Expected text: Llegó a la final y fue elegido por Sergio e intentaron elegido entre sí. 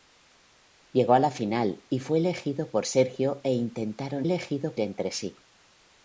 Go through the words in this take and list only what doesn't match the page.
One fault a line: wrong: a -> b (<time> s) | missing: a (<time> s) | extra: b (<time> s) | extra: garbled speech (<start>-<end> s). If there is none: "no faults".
no faults